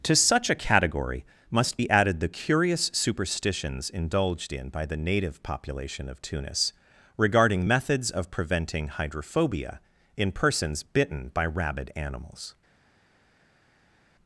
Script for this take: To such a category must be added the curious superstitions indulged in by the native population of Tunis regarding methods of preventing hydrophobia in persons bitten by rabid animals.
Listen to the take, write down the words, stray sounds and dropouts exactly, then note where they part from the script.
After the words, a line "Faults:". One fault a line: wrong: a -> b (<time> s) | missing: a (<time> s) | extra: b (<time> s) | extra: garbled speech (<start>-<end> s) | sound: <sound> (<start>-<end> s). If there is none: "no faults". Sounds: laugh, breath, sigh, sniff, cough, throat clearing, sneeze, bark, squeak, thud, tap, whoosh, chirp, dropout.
To such a category must be added the curious superstitions indulged in by the native population of Tunis regarding methods of preventing hydrophobia in persons bitten by rabid animals.
Faults:
no faults